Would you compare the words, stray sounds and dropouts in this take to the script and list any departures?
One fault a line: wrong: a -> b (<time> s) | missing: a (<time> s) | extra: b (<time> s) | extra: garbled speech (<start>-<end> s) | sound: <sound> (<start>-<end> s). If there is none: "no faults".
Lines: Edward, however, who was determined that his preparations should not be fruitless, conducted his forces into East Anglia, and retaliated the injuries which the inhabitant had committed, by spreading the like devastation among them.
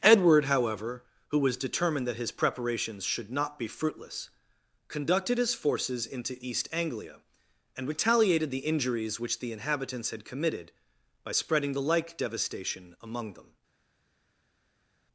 wrong: inhabitant -> inhabitants (9.5 s)